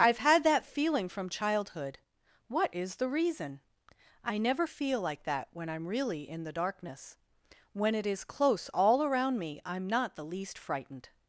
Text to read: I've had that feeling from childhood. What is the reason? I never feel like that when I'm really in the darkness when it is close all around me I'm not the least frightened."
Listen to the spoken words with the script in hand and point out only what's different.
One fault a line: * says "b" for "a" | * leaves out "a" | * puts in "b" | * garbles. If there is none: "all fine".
all fine